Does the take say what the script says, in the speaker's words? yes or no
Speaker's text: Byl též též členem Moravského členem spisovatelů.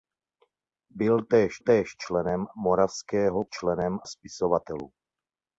yes